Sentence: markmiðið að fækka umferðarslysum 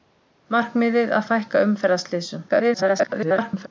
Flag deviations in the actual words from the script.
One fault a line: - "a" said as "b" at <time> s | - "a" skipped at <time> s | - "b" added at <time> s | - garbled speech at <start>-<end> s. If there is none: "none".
- garbled speech at 2.5-3.7 s